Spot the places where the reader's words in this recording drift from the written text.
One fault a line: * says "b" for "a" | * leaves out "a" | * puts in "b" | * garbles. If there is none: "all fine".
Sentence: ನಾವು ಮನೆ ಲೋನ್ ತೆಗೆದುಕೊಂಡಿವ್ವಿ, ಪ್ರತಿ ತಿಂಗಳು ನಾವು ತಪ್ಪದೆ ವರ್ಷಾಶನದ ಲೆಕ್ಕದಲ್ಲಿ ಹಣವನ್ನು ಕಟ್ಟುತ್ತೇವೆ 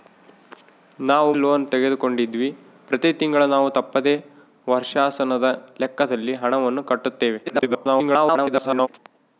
* leaves out "ಮನೆ"
* garbles